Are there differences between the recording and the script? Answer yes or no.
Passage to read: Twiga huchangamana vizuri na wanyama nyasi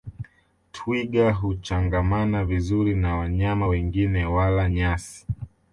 yes